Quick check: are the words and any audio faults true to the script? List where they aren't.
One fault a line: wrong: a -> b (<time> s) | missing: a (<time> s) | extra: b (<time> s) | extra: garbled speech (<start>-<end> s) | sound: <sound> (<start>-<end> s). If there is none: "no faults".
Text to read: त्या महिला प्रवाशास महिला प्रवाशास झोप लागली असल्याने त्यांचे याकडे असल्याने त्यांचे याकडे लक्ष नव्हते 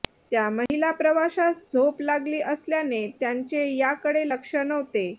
sound: dropout (0.7-0.7 s)
missing: महिला प्रवाशास (1.7 s)
missing: असल्याने त्यांचे याकडे (4.3 s)